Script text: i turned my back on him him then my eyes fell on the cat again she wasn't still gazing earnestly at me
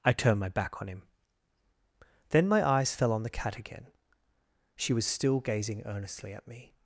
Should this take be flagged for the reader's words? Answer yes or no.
yes